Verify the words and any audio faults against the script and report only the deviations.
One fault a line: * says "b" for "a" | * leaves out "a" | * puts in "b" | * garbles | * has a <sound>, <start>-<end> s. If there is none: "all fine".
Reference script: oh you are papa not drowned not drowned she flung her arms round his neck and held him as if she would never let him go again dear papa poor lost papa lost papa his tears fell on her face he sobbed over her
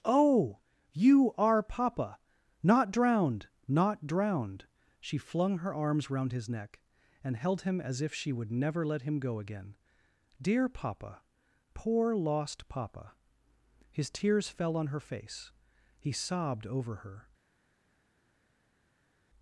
* leaves out "lost papa"